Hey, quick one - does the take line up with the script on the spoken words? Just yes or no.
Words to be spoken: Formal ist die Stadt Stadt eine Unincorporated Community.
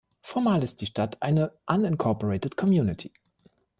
no